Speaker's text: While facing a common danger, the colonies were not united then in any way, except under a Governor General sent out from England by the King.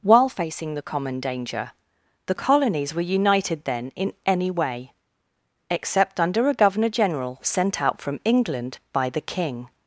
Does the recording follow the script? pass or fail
fail